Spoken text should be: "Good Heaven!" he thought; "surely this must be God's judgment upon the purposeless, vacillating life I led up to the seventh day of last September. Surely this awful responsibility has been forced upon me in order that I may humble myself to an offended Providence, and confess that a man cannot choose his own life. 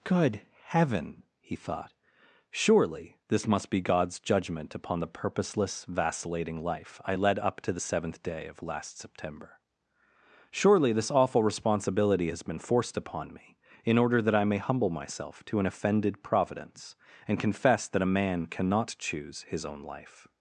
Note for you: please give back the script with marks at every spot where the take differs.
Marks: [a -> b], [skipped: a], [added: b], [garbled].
"Good Heaven!" he thought; "surely this must be God's judgment upon the purposeless, vacillating life I led up to the seventh day of last September. Surely this awful responsibility has been forced upon me in order that I may humble myself to an offended Providence, and confess that a man cannot choose his own life.